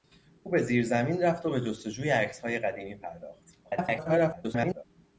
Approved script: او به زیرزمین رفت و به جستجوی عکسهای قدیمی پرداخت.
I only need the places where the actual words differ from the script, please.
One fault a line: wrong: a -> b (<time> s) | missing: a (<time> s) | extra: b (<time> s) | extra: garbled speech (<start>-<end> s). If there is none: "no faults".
extra: garbled speech (3.6-4.8 s)